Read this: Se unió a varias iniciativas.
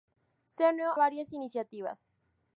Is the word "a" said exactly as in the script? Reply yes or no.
no